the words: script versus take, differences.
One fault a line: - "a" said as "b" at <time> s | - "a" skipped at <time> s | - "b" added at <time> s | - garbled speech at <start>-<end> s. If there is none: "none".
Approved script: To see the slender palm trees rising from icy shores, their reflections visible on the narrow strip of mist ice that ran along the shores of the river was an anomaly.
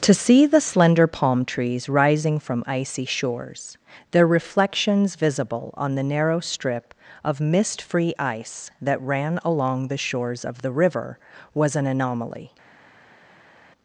- "free" added at 7.8 s